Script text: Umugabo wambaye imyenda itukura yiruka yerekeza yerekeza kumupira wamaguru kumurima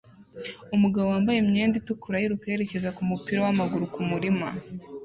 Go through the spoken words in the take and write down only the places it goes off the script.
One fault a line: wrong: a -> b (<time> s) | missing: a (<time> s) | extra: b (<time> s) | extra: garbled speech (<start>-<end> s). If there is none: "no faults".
missing: yerekeza (3.0 s)